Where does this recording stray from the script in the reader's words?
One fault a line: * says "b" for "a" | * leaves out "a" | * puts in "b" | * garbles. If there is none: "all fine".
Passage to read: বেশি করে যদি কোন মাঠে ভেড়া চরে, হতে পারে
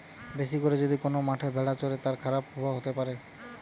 * puts in "তার খারাপ প্রভাব"